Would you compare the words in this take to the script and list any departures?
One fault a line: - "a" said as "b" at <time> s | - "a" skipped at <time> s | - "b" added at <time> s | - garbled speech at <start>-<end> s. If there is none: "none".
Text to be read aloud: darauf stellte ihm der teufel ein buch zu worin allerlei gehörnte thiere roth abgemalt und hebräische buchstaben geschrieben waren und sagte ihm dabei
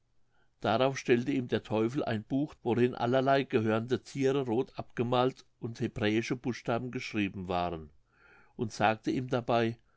- "zu" skipped at 2.5 s